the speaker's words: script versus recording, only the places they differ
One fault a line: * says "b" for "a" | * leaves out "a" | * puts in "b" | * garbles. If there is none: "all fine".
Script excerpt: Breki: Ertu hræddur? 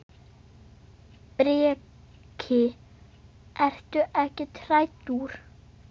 * puts in "ekkert"